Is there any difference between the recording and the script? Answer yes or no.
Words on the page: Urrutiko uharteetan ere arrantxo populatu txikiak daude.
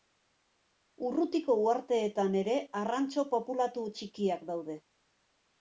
no